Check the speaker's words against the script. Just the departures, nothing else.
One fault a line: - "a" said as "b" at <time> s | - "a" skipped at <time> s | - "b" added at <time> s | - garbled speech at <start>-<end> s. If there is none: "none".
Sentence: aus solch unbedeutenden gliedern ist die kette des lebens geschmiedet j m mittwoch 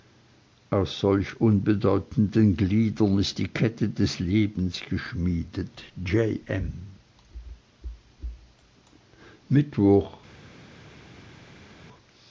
none